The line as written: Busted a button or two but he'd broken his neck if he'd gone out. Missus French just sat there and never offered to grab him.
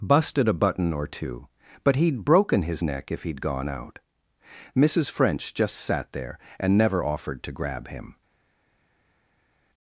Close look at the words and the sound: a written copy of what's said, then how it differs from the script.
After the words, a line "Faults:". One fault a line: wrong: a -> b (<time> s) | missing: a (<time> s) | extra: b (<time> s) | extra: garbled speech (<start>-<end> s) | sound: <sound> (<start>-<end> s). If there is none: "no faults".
Busted a button or two but he'd broken his neck if he'd gone out. Missus French just sat there and never offered to grab him.
Faults:
no faults